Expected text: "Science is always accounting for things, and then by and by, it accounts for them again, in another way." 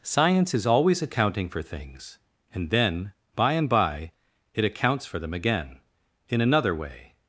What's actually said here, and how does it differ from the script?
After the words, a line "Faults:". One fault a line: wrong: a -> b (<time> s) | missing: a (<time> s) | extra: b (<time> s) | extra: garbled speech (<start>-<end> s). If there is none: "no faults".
"Science is always accounting for things, and then by and by, it accounts for them again, in another way."
Faults:
no faults